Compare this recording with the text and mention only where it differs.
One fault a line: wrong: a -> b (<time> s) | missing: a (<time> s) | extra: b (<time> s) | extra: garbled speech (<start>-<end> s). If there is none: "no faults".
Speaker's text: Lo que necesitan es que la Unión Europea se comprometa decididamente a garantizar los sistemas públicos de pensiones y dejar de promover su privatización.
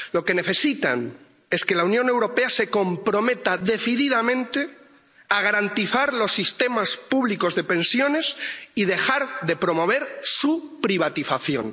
no faults